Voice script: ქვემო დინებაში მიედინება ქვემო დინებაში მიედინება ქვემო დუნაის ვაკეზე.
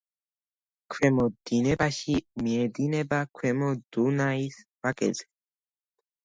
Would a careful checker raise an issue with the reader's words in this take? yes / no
yes